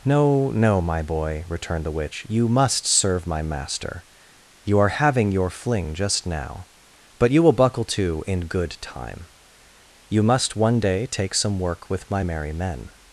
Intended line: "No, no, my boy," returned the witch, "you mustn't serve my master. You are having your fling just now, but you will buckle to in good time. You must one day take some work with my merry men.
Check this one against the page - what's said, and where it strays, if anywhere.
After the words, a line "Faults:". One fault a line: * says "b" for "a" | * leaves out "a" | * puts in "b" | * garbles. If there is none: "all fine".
"No, no, my boy," returned the witch, "you must serve my master. You are having your fling just now, but you will buckle to in good time. You must one day take some work with my merry men.
Faults:
* says "must" for "mustn't"